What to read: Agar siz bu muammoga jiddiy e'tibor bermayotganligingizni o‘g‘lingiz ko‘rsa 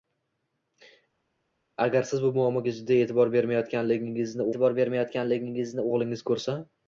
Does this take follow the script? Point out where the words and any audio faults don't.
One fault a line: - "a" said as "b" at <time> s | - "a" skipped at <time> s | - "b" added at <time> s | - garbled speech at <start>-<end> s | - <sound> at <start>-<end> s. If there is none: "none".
- "e'tibor bermayotganligingizni" added at 4.5 s